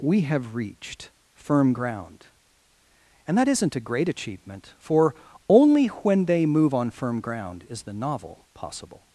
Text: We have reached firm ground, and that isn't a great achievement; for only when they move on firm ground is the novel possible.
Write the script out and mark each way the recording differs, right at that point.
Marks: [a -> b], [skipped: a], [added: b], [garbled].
We have reached firm ground, and that isn't a great achievement; for only when they move on firm ground is the novel possible.